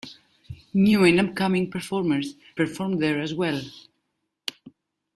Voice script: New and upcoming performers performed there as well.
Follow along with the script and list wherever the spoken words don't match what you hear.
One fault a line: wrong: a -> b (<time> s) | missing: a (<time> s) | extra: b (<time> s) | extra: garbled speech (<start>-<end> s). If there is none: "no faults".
no faults